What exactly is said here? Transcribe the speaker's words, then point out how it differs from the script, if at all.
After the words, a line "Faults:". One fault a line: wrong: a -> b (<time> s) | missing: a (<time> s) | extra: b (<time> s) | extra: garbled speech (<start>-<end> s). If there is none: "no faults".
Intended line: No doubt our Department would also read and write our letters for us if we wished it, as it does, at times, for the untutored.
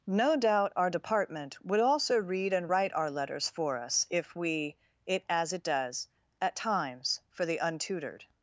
No doubt our Department would also read and write our letters for us if we it, as it does, at times, for the untutored.
Faults:
missing: wished (4.8 s)